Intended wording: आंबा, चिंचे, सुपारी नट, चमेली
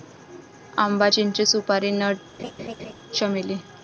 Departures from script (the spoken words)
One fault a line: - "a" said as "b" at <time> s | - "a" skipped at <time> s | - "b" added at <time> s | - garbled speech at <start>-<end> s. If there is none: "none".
none